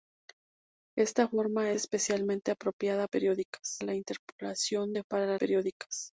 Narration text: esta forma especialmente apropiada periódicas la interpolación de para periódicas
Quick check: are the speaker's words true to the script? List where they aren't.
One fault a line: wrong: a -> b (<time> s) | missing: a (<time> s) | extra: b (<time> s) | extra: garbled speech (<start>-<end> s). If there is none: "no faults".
no faults